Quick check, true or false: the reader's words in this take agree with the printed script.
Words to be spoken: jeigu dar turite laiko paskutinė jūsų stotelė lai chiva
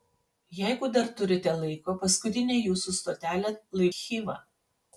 true